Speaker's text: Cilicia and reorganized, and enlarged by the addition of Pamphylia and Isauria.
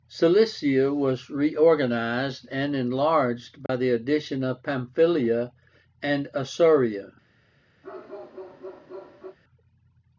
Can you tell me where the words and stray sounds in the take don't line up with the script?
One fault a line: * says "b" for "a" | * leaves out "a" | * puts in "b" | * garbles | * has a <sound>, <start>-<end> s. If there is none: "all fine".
* says "was" for "and"
* has a dropout, 3.7-3.7 s
* has a bark, 7.8-9.4 s